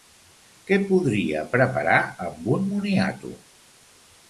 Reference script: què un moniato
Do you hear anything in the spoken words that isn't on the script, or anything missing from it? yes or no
yes